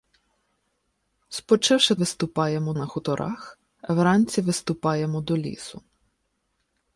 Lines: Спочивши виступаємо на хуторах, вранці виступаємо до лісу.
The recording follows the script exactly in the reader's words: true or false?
true